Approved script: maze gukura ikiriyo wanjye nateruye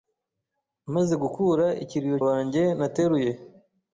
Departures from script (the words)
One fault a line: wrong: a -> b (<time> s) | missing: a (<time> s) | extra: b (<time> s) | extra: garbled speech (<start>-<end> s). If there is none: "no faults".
no faults